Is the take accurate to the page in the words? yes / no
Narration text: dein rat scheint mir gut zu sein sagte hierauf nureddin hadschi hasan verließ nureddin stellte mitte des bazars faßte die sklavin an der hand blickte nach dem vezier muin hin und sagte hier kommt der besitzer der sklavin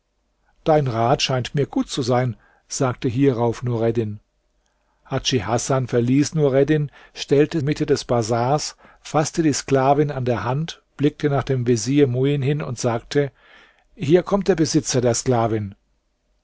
yes